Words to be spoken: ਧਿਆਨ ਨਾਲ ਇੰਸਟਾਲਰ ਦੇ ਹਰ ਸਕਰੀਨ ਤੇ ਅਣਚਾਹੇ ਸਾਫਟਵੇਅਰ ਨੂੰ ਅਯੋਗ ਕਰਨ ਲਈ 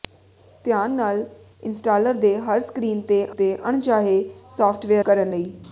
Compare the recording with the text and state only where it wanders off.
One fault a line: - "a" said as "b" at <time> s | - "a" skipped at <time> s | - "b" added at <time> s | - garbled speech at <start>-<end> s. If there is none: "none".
- "ਤੇ" added at 3.3 s
- "ਨੂੰ ਅਯੋਗ" skipped at 5.0 s